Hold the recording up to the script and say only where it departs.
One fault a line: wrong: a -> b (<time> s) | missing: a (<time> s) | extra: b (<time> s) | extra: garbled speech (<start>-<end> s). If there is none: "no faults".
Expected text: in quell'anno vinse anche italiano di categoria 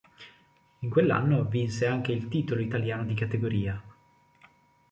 extra: il titolo (2.1 s)